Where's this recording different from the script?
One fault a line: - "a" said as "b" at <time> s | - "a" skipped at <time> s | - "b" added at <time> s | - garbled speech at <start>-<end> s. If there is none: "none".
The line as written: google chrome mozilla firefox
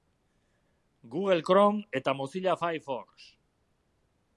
- "eta" added at 2.0 s